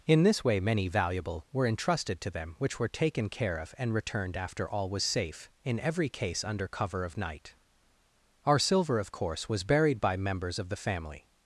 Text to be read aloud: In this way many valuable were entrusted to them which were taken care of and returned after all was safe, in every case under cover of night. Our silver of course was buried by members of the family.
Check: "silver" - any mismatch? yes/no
no